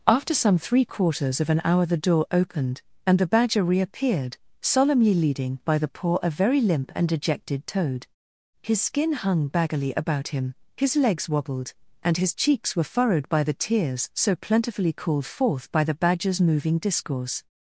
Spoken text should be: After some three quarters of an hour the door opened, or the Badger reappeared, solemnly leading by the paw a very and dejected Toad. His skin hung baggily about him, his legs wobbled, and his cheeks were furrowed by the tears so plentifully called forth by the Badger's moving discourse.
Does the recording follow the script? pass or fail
fail